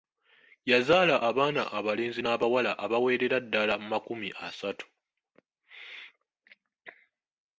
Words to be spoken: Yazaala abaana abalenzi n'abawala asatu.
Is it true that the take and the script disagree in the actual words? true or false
true